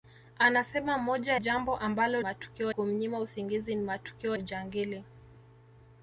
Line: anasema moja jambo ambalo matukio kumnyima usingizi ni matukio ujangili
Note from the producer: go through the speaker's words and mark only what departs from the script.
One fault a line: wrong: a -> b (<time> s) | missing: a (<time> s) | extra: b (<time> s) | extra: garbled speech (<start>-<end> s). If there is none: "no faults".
no faults